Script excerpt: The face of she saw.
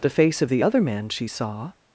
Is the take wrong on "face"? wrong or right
right